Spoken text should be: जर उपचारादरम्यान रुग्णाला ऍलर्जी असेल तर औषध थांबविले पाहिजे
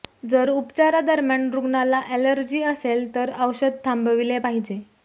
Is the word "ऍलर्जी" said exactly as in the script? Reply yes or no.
yes